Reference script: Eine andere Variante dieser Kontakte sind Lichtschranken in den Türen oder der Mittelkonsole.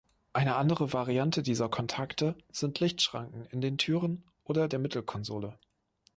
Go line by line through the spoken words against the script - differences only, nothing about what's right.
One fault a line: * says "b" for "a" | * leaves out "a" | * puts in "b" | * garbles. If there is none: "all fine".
all fine